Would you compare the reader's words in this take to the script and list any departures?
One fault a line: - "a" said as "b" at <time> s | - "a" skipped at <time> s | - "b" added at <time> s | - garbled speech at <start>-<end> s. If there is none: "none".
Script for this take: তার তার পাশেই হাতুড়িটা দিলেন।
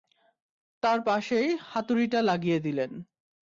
- "তার" skipped at 1.0 s
- "লাগিয়ে" added at 2.2 s